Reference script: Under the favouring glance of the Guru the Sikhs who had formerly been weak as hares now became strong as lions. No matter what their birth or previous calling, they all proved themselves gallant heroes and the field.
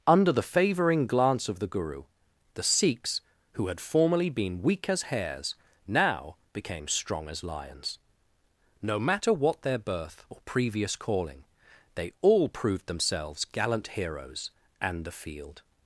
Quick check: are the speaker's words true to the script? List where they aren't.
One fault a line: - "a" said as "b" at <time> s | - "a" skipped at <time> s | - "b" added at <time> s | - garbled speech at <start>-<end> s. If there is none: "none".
none